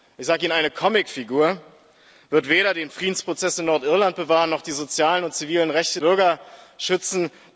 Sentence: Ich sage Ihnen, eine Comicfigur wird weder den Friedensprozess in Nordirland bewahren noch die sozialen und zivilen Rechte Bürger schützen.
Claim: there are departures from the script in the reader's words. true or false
false